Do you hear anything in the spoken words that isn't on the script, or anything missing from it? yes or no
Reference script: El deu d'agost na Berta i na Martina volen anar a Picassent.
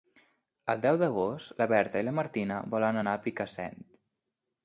no